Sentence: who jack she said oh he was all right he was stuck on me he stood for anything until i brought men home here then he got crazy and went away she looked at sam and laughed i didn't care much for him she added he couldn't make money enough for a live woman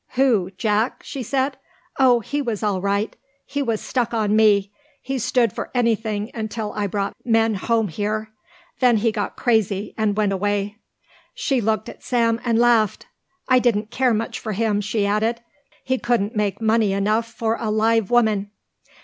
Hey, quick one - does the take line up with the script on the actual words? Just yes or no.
yes